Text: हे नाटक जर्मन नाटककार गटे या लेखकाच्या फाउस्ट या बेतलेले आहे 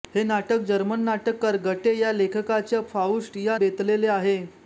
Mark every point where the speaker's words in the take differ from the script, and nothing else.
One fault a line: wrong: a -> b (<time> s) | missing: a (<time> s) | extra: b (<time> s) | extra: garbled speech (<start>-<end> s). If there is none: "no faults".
no faults